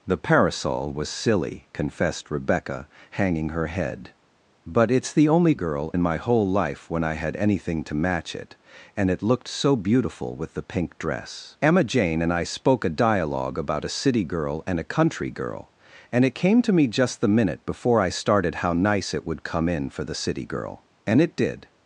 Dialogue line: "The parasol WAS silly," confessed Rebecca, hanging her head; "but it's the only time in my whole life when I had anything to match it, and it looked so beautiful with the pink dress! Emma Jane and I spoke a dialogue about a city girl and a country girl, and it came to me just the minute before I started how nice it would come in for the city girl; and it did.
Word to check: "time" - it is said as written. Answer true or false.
false